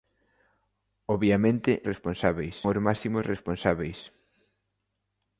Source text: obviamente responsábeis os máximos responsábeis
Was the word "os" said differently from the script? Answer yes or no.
no